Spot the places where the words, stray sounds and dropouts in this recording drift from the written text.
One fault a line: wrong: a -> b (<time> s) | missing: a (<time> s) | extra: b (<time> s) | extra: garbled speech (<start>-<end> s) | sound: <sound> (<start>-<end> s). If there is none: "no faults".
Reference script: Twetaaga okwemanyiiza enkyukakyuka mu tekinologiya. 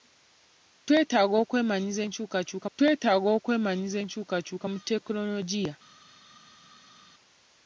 extra: twetaaga okwemanyiiza enkyukakyuka (2.8 s)